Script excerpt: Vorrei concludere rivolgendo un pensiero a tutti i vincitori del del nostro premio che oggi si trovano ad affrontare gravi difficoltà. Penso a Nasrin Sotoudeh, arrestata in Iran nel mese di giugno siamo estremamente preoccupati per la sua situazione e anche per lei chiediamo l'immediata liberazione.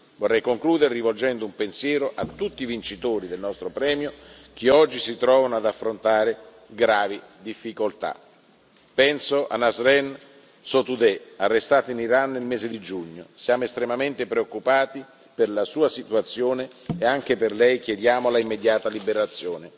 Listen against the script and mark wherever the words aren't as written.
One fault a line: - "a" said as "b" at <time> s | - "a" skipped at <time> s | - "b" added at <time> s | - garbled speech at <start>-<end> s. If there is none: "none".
- "del" skipped at 3.4 s